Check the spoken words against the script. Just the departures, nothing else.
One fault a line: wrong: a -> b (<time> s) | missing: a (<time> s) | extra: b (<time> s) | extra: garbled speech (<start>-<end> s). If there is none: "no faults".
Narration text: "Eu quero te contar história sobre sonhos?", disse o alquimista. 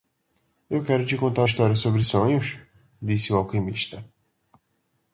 no faults